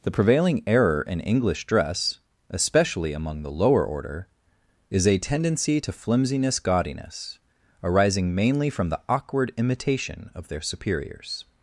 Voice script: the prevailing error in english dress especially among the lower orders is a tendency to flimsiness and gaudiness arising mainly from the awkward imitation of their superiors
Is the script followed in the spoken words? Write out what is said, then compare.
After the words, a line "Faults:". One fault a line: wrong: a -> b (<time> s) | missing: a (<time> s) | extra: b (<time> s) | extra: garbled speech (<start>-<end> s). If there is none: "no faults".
the prevailing error in english dress especially among the lower order is a tendency to flimsiness gaudiness arising mainly from the awkward imitation of their superiors
Faults:
wrong: orders -> order (3.9 s)
missing: and (6.6 s)